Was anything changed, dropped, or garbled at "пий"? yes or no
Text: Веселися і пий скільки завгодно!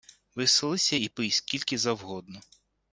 no